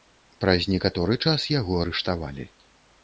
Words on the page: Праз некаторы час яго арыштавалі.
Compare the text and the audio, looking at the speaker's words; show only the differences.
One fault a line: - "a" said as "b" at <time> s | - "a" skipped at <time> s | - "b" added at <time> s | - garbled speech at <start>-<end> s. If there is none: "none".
none